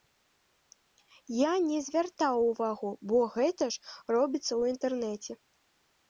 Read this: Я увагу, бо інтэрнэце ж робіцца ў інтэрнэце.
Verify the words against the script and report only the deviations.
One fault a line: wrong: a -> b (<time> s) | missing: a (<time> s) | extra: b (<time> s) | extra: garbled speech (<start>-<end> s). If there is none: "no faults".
extra: не звяртаў (1.7 s)
wrong: інтэрнэце -> гэта (3.4 s)